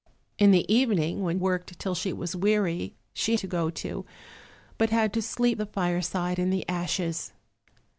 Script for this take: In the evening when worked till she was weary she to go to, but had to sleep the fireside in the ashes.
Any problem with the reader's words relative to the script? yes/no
no